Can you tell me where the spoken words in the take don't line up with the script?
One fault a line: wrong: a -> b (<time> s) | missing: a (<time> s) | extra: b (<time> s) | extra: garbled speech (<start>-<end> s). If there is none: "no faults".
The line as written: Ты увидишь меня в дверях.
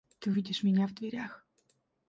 no faults